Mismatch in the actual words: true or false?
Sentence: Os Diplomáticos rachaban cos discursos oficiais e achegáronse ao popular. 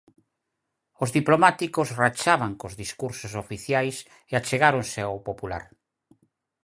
false